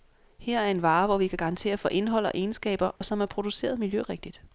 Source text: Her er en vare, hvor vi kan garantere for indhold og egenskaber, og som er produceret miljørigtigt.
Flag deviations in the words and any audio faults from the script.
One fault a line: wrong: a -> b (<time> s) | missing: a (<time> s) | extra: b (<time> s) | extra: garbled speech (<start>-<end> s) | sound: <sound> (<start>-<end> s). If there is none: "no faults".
sound: dropout (3.0-3.0 s)